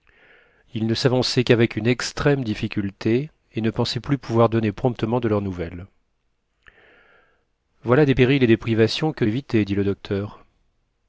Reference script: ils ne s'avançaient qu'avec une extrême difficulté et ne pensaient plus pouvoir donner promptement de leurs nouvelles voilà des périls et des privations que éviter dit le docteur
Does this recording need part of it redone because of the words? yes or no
no